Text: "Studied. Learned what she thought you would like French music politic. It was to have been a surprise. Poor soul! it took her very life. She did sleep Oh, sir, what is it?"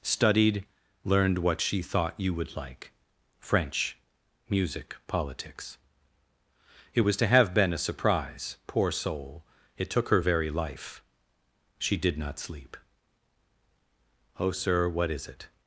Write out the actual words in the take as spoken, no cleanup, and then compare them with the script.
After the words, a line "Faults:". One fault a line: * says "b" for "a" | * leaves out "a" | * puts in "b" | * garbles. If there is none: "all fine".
"Studied. Learned what she thought you would like French music politics. It was to have been a surprise. Poor soul! it took her very life. She did not sleep Oh, sir, what is it?"
Faults:
* says "politics" for "politic"
* puts in "not"